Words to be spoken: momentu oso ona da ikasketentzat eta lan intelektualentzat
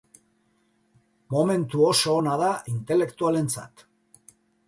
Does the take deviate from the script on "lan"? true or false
true